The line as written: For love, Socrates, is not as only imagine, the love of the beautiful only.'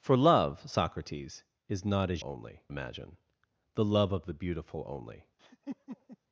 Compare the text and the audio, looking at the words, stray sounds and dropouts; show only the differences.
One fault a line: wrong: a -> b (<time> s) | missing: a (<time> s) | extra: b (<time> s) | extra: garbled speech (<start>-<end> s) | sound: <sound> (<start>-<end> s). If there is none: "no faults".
sound: laugh (5.4-6.2 s)